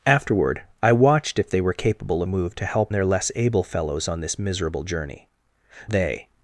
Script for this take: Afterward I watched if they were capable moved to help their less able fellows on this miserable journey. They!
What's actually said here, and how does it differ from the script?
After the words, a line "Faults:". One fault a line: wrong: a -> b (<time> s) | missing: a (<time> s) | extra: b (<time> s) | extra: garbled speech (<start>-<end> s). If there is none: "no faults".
Afterward I watched if they were capable moved to help their less able fellows on this miserable journey. They!
Faults:
no faults